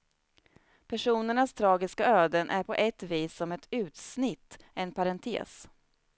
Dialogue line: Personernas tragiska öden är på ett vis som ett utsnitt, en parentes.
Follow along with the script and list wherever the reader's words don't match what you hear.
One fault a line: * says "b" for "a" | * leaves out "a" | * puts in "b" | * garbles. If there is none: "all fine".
all fine